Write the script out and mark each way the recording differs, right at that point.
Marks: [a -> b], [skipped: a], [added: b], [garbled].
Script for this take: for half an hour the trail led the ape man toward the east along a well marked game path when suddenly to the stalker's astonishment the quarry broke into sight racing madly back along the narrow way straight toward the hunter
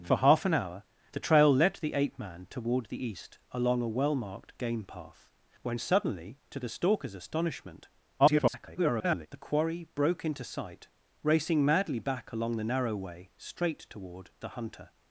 for half an hour the trail led the ape man toward the east along a well marked game path when suddenly to the stalker's astonishment [garbled] the quarry broke into sight racing madly back along the narrow way straight toward the hunter